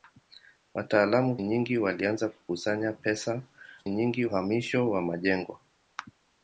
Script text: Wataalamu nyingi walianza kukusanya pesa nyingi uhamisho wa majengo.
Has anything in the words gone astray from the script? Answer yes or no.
no